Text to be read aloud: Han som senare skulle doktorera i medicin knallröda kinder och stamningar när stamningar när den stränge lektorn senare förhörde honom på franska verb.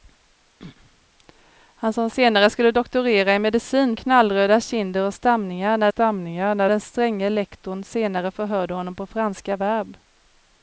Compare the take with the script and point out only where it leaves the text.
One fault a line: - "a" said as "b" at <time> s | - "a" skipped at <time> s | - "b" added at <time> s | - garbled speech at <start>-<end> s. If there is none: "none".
none